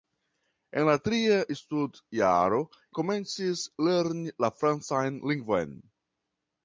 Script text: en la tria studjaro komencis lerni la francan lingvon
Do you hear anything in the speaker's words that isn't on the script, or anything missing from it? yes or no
no